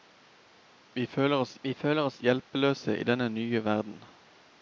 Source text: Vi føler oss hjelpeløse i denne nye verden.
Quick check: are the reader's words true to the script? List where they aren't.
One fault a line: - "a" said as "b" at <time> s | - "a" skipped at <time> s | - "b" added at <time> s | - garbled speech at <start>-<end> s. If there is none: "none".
- "vi føler oss" added at 1.6 s